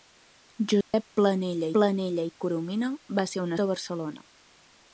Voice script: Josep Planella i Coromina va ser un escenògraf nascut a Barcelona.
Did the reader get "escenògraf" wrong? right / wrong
wrong